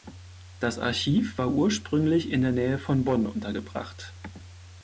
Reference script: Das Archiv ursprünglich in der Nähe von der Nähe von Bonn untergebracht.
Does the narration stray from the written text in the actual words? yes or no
yes